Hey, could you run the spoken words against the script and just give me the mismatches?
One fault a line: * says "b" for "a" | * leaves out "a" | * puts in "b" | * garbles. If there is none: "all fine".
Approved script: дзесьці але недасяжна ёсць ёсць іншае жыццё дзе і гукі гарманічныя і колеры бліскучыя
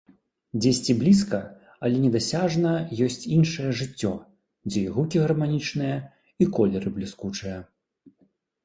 * puts in "блізка"
* leaves out "ёсць"